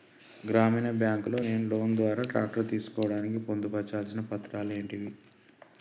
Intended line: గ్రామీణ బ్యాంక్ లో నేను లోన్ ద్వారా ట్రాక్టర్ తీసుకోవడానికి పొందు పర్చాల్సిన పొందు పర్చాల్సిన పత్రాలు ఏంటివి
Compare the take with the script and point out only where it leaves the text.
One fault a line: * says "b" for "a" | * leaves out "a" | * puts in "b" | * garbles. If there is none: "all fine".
* leaves out "పొందు పర్చాల్సిన"